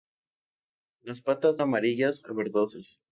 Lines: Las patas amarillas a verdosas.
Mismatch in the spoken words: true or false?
false